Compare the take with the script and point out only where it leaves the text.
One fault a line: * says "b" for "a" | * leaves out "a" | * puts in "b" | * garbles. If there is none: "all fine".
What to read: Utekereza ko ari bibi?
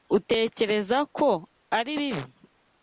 all fine